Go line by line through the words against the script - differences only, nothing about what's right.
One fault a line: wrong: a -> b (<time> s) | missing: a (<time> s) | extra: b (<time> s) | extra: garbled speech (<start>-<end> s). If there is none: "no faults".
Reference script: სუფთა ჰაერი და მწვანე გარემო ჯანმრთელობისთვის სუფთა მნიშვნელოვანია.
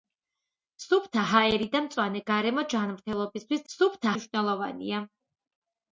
no faults